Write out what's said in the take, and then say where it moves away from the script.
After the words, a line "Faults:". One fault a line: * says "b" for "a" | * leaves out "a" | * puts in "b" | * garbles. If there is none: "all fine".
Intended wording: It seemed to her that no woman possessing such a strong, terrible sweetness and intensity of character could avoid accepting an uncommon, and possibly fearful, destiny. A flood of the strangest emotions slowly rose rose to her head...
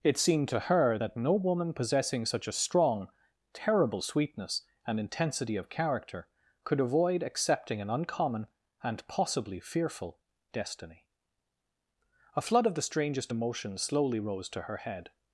It seemed to her that no woman possessing such a strong, terrible sweetness and intensity of character could avoid accepting an uncommon, and possibly fearful, destiny. A flood of the strangest emotions slowly rose to her head...
Faults:
* leaves out "rose"